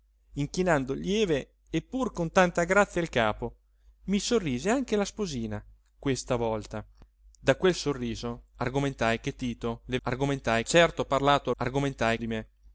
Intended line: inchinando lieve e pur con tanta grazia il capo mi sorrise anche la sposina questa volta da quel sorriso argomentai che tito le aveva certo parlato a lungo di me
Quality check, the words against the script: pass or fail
fail